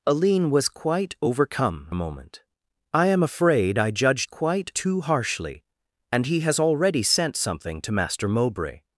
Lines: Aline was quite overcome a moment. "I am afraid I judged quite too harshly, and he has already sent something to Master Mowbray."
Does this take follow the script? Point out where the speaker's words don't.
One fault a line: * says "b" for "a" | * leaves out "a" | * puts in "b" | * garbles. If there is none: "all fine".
all fine